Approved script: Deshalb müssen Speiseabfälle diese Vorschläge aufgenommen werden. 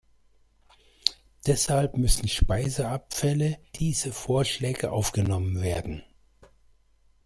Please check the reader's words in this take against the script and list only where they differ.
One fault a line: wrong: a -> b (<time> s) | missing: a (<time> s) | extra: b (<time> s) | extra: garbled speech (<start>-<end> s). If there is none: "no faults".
no faults